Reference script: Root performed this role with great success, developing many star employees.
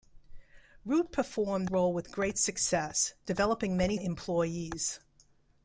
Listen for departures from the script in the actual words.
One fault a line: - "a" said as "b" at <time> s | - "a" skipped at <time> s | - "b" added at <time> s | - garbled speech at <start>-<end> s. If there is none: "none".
- "this" skipped at 1.7 s
- "star" skipped at 4.0 s